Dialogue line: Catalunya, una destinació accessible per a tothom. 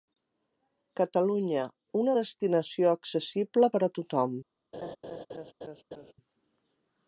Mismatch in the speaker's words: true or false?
false